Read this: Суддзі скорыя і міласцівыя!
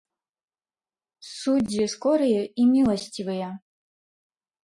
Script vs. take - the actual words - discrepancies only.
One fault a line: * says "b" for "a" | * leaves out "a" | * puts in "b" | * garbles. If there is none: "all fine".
all fine